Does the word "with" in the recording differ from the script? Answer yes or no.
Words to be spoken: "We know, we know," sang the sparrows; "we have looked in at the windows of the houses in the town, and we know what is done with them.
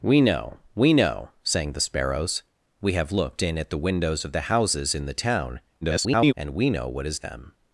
yes